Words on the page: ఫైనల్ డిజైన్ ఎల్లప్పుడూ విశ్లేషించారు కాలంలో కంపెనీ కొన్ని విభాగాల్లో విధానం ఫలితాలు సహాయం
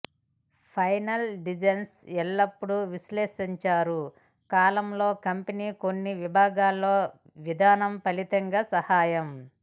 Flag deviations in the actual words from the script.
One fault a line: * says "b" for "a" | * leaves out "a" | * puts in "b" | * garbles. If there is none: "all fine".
all fine